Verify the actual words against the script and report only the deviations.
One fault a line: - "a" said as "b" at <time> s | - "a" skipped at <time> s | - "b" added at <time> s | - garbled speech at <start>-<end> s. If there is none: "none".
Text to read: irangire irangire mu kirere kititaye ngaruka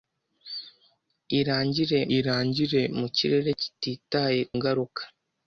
none